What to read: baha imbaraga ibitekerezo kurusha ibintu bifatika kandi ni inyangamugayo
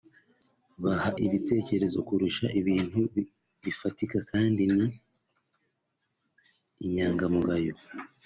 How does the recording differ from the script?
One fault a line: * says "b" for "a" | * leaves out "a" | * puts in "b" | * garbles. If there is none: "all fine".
* leaves out "imbaraga"